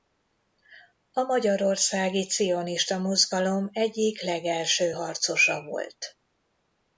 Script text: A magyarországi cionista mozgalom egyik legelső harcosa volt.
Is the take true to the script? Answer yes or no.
yes